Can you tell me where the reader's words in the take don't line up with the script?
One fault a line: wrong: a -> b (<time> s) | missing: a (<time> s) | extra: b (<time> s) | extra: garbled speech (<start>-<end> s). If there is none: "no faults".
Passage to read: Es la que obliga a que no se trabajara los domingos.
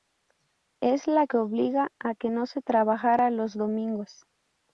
no faults